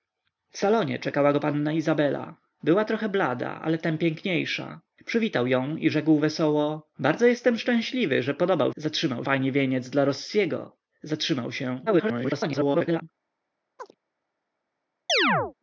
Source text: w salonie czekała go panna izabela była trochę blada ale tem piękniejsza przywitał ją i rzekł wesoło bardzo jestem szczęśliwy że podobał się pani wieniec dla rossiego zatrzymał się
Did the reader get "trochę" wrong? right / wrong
right